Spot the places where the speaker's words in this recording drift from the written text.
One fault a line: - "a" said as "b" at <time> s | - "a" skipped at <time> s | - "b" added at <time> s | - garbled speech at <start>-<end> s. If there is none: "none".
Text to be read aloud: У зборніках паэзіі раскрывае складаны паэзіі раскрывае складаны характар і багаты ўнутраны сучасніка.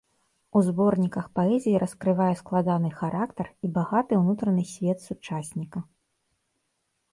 - "паэзіі раскрывае складаны" skipped at 2.9 s
- "свет" added at 4.7 s